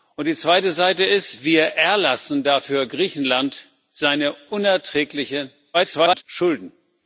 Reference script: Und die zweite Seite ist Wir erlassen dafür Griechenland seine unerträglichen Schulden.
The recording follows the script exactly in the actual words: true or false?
false